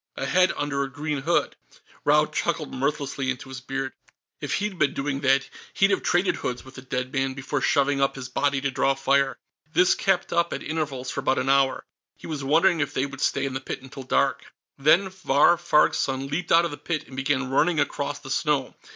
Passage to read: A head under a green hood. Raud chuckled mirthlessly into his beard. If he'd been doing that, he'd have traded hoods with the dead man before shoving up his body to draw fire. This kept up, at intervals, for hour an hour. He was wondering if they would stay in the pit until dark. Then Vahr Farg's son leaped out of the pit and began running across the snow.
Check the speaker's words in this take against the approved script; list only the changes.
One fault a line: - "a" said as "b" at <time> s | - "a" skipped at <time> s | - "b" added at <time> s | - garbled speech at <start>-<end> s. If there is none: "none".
- "hour" said as "about" at 11.2 s